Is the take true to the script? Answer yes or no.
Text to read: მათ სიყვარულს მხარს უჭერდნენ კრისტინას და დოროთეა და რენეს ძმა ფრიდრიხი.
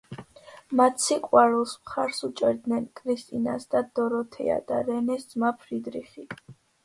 yes